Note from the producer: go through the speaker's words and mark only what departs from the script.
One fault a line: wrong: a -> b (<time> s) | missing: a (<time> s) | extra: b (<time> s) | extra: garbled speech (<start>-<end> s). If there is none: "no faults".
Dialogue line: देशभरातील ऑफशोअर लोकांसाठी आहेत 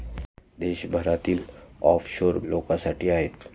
no faults